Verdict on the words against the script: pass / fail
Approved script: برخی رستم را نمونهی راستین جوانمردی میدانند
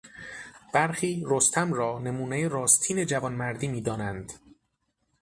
pass